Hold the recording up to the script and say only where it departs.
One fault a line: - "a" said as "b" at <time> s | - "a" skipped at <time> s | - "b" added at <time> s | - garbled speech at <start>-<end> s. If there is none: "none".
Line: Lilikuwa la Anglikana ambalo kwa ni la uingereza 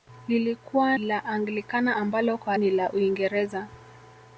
none